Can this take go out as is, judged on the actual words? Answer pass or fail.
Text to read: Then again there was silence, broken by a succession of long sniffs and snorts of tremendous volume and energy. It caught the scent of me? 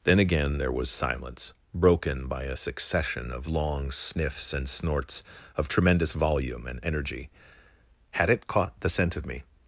fail